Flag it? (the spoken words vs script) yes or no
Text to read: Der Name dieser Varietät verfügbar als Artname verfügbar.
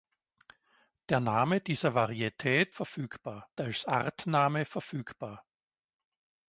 no